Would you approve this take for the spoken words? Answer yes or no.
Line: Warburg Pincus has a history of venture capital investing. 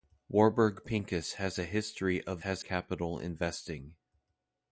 no